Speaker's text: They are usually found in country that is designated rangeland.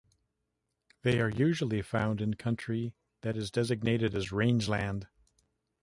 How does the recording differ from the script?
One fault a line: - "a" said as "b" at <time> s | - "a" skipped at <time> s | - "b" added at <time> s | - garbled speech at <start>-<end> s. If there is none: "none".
- "as" added at 4.2 s